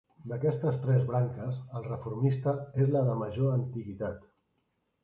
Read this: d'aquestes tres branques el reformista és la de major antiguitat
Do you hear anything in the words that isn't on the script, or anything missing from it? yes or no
no